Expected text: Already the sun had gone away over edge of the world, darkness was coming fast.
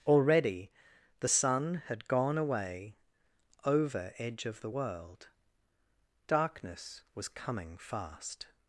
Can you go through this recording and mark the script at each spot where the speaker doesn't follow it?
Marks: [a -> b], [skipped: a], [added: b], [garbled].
Already the sun had gone away over edge of the world, darkness was coming fast.